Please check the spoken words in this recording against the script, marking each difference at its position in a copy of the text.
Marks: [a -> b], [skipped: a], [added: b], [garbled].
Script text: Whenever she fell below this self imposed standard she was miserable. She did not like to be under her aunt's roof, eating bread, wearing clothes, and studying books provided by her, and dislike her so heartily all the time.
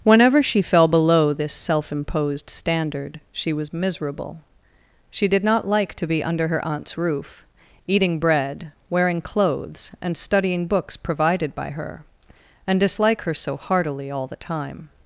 Whenever she fell below this self imposed standard she was miserable. She did not like to be under her aunt's roof, eating bread, wearing clothes, and studying books provided by her, and dislike her so heartily all the time.